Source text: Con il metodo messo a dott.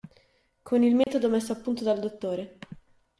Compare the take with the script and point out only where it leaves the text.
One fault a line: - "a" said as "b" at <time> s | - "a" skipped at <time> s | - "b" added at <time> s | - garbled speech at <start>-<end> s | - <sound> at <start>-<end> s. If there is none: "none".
- dropout at 1.0-1.1 s
- "punto dal" added at 1.6 s